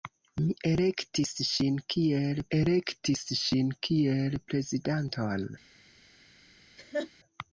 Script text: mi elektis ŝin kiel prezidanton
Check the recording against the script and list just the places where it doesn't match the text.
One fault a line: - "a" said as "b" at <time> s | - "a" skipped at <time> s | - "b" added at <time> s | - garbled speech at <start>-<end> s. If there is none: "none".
- "elektis ŝin kiel" added at 2.6 s